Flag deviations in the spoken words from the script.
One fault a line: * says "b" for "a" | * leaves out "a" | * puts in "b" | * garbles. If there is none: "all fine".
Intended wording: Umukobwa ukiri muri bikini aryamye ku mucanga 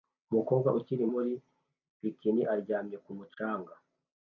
all fine